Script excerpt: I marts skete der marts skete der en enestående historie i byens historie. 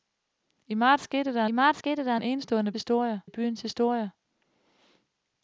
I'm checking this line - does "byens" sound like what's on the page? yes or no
yes